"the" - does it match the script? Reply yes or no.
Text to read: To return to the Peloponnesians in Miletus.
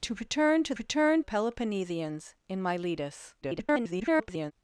no